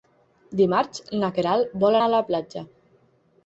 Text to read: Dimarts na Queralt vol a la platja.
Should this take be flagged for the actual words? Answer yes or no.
no